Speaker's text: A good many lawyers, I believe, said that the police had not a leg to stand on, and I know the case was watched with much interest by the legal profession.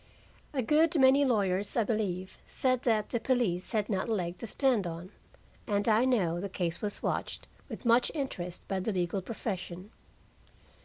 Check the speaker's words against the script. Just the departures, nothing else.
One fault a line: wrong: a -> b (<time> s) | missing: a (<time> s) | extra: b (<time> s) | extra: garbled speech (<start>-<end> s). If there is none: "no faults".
no faults